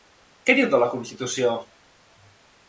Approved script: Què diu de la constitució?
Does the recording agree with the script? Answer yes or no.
yes